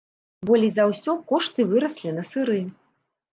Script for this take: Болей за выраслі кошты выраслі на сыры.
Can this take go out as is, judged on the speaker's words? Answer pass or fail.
fail